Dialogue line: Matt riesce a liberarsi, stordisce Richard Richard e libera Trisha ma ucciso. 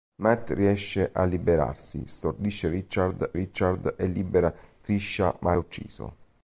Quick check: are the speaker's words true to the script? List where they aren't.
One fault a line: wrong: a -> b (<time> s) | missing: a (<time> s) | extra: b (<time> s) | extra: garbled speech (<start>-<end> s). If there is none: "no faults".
no faults